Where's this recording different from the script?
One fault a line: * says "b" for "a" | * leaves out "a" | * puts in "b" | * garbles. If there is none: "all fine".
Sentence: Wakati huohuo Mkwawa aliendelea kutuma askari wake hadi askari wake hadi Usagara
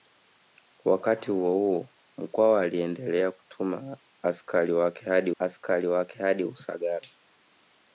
all fine